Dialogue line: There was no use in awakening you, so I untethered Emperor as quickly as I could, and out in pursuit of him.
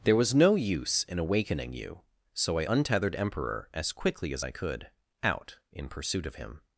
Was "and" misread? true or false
true